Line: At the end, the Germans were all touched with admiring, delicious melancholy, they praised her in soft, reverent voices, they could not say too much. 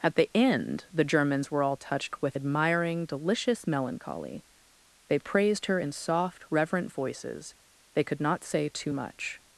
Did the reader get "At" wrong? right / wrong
right